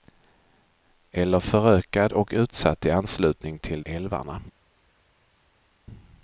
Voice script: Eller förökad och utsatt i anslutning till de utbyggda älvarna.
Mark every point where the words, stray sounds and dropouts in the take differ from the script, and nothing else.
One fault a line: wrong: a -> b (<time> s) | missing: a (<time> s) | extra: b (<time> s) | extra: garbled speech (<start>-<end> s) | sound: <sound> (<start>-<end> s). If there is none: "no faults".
missing: de utbyggda (3.8 s)